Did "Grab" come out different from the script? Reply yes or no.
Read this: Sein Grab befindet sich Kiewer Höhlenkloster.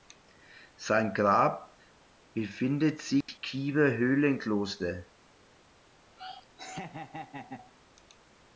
no